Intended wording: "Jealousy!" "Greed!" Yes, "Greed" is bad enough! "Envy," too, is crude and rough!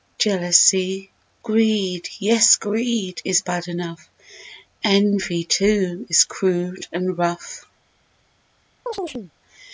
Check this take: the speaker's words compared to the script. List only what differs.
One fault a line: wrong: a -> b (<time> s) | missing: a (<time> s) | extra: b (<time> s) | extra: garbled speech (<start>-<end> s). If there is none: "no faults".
no faults